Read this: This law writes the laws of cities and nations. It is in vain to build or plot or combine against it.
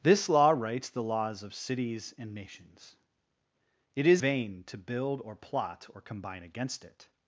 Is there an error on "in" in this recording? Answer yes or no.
yes